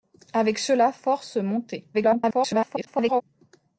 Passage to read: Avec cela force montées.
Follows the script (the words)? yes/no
no